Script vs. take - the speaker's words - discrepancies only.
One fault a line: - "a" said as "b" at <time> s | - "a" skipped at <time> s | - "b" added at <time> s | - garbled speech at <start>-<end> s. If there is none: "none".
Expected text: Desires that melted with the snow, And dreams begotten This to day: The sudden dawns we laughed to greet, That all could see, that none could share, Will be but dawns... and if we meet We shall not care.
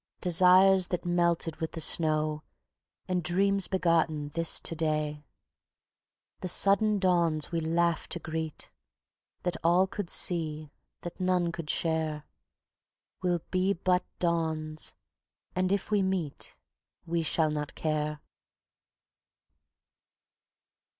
none